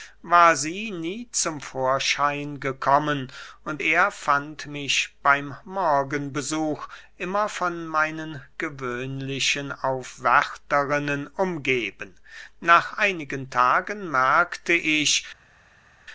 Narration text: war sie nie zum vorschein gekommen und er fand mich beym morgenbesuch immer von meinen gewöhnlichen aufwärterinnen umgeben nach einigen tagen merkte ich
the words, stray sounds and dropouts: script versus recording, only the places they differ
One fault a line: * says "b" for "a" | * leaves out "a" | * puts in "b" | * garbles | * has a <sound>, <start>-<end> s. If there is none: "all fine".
all fine